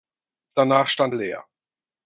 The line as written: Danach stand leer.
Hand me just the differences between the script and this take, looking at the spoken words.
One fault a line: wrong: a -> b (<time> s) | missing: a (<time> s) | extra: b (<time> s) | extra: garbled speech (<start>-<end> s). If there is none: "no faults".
no faults